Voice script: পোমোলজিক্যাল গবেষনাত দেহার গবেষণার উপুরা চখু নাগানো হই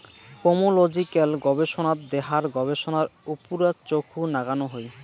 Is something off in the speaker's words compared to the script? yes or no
no